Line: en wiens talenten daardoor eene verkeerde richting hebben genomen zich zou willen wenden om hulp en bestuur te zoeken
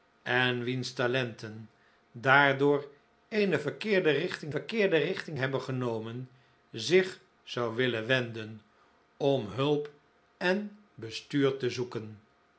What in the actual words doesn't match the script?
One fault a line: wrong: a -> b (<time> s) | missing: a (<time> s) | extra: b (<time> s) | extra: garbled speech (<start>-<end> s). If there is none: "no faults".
extra: verkeerde richting (4.5 s)